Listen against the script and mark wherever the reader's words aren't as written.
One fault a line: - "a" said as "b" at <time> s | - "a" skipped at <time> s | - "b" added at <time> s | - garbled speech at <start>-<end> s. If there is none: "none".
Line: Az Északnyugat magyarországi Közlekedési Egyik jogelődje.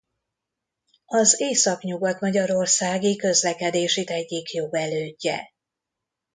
none